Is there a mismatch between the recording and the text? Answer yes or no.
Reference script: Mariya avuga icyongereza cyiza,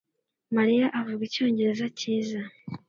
no